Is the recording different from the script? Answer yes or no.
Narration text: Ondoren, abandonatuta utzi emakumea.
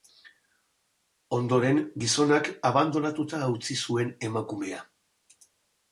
yes